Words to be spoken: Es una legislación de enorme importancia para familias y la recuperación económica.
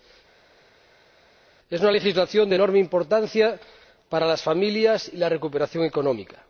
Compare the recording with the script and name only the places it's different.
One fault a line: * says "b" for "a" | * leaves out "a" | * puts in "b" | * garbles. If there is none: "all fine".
* puts in "las"